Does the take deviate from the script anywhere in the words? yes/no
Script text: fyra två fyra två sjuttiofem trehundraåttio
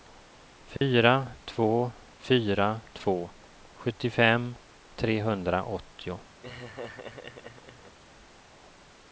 no